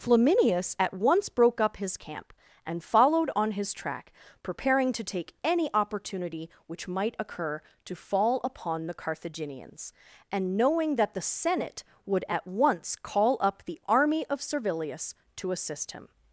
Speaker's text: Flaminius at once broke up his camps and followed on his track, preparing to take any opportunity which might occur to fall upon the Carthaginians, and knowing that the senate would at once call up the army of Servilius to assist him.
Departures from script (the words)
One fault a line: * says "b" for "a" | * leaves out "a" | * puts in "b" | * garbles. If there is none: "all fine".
* says "camp" for "camps"